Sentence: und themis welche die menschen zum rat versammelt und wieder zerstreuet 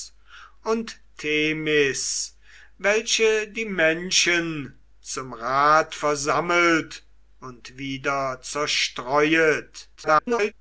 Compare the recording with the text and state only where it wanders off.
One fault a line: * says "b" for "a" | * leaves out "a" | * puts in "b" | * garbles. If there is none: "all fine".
* garbles